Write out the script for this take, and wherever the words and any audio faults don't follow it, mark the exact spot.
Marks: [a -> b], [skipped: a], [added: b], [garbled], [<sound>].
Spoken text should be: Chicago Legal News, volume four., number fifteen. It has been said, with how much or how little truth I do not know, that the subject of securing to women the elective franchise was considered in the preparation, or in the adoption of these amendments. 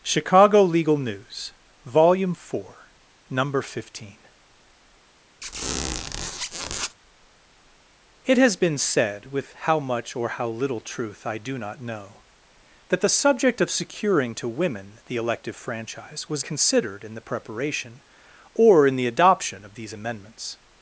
Chicago Legal News, volume four., number fifteen. [squeak] It has been said, with how much or how little truth I do not know, that the subject of securing to women the elective franchise was considered in the preparation, or in the adoption of these amendments.